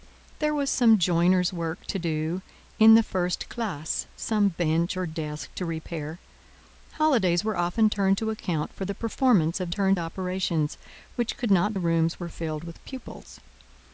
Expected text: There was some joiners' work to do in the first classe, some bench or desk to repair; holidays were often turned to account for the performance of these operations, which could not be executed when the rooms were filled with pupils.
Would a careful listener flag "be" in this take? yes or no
yes